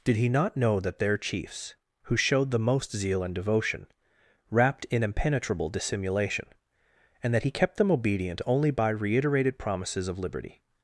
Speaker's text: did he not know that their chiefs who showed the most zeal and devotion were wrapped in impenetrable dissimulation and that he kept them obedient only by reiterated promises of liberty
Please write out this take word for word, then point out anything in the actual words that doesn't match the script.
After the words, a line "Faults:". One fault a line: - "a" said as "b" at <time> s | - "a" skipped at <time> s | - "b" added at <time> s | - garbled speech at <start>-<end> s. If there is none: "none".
did he not know that their chiefs who showed the most zeal and devotion wrapped in impenetrable dissimulation and that he kept them obedient only by reiterated promises of liberty
Faults:
- "were" skipped at 3.9 s